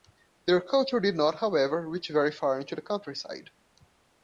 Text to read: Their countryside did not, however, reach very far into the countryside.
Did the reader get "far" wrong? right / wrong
right